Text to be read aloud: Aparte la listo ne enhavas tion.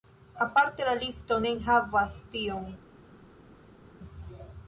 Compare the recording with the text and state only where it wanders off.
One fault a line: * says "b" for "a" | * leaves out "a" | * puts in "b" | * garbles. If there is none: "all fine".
all fine